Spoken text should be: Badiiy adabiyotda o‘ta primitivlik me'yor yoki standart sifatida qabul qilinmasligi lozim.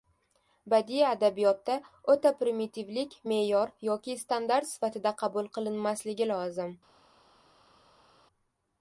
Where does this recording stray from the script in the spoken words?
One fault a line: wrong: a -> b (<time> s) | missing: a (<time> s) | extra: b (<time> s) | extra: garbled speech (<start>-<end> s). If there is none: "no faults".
no faults